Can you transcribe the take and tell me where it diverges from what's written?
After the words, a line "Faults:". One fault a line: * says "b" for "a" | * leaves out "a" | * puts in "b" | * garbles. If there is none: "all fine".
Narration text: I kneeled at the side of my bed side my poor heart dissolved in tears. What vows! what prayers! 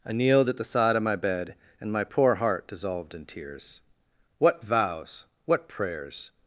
I kneeled at the side of my bed and my poor heart dissolved in tears. What vows! what prayers!
Faults:
* says "and" for "side"